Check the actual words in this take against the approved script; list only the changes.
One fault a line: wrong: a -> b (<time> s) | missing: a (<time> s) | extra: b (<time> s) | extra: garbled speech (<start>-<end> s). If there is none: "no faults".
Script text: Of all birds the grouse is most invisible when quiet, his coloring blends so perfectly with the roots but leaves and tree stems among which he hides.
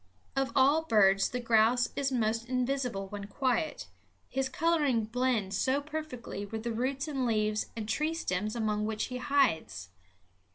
wrong: but -> and (7.1 s)